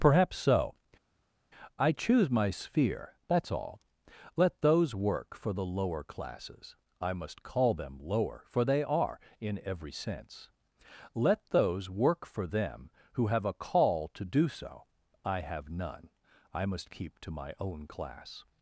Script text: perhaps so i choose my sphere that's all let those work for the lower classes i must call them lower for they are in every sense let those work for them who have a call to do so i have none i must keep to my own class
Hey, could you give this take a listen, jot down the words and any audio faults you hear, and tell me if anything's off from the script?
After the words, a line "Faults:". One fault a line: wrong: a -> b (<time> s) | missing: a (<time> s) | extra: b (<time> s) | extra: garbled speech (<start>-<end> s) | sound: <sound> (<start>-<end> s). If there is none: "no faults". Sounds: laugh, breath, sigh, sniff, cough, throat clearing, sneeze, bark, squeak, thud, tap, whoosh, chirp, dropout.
perhaps so i choose my sphere that's all let those work for the lower classes i must call them lower for they are in every sense let those work for them who have a call to do so i have none i must keep to my own class
Faults:
no faults